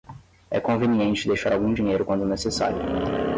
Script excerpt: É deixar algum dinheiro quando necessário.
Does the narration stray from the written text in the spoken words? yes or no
yes